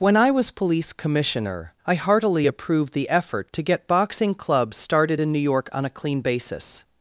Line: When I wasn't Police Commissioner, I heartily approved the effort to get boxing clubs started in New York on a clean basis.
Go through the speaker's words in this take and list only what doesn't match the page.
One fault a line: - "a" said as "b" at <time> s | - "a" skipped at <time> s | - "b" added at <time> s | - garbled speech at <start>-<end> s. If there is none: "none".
- "wasn't" said as "was" at 0.3 s